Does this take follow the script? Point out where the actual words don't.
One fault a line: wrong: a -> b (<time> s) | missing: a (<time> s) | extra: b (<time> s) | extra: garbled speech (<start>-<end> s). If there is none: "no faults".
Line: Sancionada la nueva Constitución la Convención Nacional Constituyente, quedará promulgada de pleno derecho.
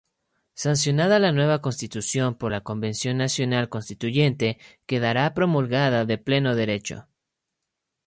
extra: por (2.3 s)